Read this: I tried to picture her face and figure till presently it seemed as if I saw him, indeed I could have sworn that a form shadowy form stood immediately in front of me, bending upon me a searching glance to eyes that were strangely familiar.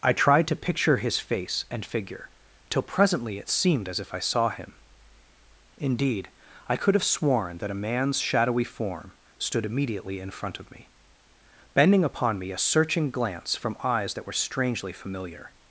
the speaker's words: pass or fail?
fail